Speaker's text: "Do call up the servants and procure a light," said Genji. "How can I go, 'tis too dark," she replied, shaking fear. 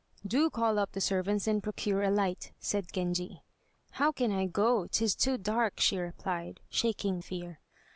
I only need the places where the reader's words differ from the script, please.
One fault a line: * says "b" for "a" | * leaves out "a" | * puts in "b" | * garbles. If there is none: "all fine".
all fine